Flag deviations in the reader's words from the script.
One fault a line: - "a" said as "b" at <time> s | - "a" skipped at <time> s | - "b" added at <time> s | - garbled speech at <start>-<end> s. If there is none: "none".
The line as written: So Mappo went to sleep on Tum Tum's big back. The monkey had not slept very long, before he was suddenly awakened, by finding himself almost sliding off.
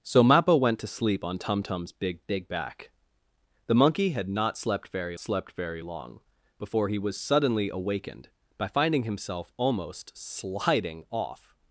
- "big" added at 2.2 s
- "slept very" added at 5.2 s